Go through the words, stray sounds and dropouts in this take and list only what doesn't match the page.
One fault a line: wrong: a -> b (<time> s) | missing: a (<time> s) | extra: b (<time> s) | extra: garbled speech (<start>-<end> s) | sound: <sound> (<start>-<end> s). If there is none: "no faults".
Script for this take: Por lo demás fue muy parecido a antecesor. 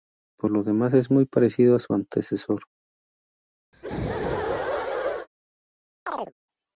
wrong: fue -> es (0.9 s)
extra: su (1.8 s)
sound: laugh (3.7-5.3 s)
sound: chirp (6.1-6.3 s)